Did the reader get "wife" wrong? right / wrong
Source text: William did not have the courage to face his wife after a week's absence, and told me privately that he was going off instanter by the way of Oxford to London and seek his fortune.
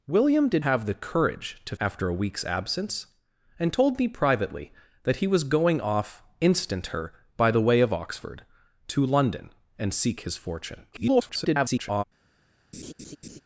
wrong